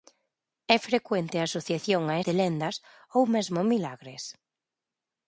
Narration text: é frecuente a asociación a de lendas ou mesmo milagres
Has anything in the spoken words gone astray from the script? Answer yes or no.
no